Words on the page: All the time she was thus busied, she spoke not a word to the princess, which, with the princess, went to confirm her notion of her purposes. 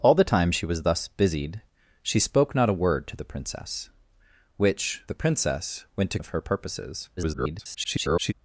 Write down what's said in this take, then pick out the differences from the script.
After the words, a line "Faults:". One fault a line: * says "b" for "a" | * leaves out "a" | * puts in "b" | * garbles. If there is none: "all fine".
All the time she was thus busied, she spoke not a word to the princess, which, the princess, went to of her purposes. [garbled]
Faults:
* leaves out "with"
* leaves out "confirm her notion"
* garbles